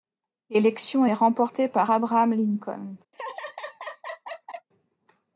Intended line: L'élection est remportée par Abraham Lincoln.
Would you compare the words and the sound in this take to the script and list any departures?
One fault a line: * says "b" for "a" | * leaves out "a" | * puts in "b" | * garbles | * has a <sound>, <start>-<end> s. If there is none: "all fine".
* has a laugh, 3.1-4.7 s